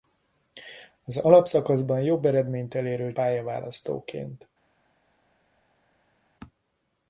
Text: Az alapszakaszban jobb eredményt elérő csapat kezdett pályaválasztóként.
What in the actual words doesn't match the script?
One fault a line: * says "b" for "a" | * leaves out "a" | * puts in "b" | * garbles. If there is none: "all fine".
* leaves out "csapat kezdett"